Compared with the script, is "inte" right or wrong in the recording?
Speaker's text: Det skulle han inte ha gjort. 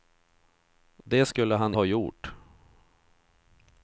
wrong